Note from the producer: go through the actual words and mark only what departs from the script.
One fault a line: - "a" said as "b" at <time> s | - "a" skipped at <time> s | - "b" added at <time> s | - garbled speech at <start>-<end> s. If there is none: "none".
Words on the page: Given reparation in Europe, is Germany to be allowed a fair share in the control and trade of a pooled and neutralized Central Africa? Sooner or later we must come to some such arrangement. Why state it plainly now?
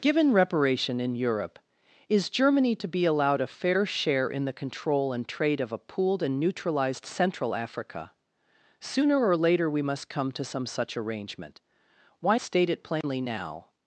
none